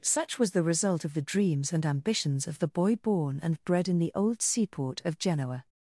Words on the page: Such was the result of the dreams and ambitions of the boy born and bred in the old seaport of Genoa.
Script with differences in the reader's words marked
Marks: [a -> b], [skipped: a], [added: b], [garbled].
Such was the result of the dreams and ambitions of the boy born and bred in the old seaport of Genoa.